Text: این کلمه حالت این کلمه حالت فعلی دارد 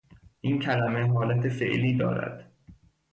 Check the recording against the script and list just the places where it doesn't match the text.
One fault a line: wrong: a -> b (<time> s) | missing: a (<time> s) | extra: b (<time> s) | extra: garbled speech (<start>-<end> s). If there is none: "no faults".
missing: این کلمه حالت (1.5 s)